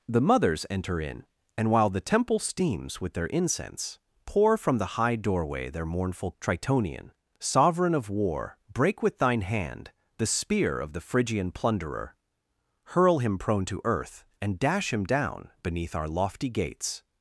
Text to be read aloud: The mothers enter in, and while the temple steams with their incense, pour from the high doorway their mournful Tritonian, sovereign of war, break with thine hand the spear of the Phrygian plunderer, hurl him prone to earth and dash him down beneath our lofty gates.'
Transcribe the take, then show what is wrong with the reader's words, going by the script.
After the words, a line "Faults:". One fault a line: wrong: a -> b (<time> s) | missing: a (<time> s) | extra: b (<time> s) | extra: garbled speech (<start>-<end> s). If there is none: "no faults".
The mothers enter in, and while the temple steams with their incense, pour from the high doorway their mournful Tritonian, sovereign of war, break with thine hand the spear of the Phrygian plunderer, hurl him prone to earth and dash him down beneath our lofty gates.'
Faults:
no faults